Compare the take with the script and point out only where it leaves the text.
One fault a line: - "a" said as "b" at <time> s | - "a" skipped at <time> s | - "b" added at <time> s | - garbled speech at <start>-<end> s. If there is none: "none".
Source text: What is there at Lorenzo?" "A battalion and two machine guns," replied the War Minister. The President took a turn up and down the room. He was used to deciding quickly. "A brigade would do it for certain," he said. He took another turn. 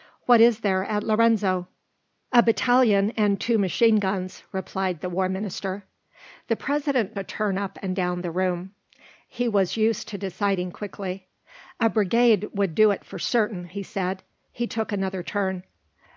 - "took" skipped at 7.2 s